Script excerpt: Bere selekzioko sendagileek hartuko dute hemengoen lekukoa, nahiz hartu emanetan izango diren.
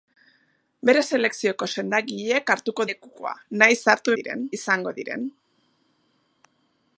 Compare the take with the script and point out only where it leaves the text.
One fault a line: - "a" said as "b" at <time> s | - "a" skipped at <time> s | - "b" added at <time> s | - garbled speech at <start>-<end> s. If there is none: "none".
- "dute hemengoen" skipped at 2.9 s
- "emanetan" said as "diren" at 4.2 s